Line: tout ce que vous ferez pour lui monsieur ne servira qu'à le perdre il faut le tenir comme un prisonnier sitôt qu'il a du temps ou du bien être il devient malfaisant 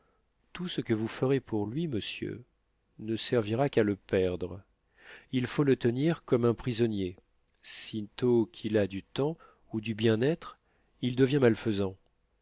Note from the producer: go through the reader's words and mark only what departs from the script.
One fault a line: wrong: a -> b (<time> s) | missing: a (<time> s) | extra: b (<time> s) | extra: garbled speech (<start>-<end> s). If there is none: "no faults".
no faults